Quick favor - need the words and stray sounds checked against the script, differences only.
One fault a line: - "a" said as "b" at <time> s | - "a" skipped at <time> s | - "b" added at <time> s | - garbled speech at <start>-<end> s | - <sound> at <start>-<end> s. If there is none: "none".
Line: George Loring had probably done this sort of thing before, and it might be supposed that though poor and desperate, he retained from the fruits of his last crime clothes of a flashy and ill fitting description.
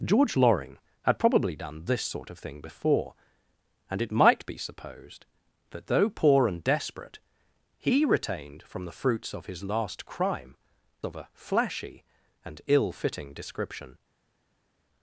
- "clothes" skipped at 10.6 s